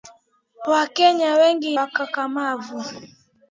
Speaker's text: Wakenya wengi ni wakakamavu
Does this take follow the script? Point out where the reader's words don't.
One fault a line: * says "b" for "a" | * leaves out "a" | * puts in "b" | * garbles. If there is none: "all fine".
* leaves out "ni"